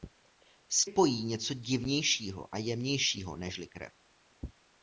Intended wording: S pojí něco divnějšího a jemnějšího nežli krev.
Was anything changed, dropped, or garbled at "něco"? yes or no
no